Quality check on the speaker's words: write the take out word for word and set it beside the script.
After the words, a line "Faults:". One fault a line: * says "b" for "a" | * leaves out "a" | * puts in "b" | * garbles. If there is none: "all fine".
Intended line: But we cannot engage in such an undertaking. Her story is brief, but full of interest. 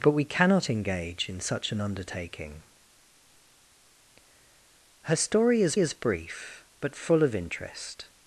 But we cannot engage in such an undertaking. Her story is is brief, but full of interest.
Faults:
* puts in "is"